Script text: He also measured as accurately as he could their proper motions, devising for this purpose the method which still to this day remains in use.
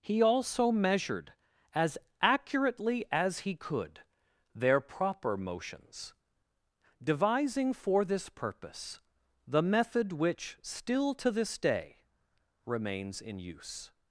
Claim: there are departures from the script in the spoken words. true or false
false